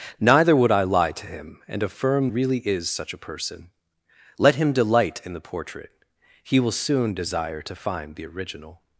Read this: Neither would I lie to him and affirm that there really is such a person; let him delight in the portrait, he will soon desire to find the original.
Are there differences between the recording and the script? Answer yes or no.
yes